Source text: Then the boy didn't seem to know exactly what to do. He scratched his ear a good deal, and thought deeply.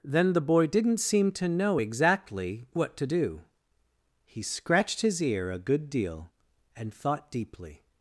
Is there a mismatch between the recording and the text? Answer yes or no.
no